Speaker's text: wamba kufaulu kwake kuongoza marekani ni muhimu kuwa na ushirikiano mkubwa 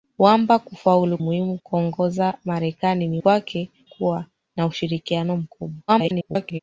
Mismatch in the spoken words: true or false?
true